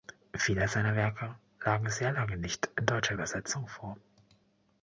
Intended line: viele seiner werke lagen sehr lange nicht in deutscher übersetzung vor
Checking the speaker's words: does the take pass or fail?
pass